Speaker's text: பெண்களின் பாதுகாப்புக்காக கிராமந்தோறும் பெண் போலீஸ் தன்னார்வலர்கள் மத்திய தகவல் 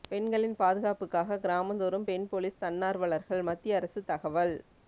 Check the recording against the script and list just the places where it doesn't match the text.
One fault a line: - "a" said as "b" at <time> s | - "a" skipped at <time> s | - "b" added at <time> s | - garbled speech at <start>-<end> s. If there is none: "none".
- "அரசு" added at 3.8 s